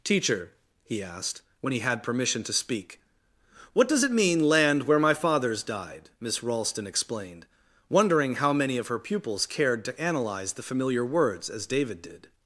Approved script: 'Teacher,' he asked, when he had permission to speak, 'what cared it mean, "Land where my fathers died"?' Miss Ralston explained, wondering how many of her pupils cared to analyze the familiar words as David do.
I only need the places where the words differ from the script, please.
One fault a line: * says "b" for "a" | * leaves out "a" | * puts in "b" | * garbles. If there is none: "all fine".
* says "does" for "cared"
* says "did" for "do"